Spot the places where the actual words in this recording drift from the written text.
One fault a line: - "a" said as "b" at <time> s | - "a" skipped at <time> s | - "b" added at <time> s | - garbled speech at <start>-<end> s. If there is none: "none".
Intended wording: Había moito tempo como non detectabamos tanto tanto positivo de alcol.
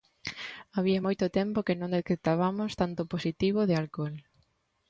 - "como" said as "que" at 1.7 s
- "tanto" skipped at 3.0 s